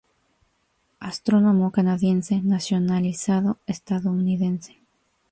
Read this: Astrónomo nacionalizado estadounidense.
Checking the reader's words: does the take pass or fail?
fail